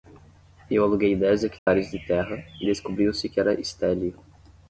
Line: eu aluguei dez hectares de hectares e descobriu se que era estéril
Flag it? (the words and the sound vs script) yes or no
yes